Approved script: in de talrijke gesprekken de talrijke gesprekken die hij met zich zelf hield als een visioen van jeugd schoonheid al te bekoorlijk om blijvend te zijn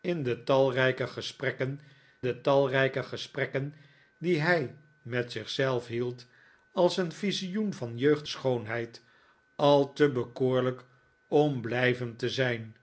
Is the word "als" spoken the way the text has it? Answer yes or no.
yes